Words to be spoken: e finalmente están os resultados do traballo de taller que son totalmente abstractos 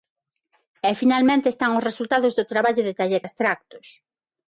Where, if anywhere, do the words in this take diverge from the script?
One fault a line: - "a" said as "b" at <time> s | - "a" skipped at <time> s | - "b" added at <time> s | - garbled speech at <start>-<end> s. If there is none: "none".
- "que son totalmente" skipped at 3.2 s